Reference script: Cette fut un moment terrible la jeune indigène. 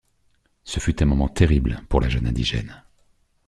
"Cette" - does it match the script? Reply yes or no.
no